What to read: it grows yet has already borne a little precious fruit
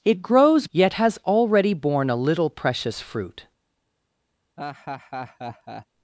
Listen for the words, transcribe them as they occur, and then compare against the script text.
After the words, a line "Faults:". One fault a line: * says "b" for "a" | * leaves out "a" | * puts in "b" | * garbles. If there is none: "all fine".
it grows yet has already borne a little precious fruit
Faults:
all fine